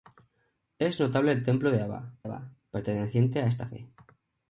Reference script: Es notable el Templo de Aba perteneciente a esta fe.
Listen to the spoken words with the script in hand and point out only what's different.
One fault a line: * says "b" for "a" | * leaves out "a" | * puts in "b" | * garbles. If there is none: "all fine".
* puts in "Aba"